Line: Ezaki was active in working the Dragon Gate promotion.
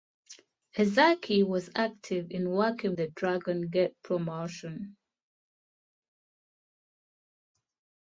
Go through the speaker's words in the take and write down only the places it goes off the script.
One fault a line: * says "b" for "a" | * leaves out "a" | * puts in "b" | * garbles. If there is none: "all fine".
all fine